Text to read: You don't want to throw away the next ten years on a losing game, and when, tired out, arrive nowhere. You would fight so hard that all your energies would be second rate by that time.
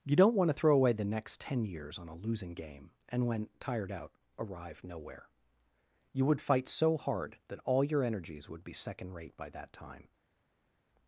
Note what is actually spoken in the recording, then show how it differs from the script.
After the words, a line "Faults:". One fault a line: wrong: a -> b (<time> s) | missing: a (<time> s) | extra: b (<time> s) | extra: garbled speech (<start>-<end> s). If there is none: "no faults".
You don't want to throw away the next ten years on a losing game, and when, tired out, arrive nowhere. You would fight so hard that all your energies would be second rate by that time.
Faults:
no faults